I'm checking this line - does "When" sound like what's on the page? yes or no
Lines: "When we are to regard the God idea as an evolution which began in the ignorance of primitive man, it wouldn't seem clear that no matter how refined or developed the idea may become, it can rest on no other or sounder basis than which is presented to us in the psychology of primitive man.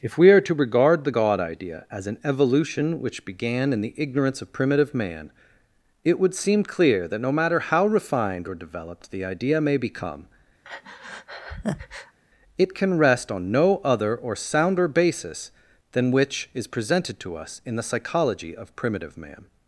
no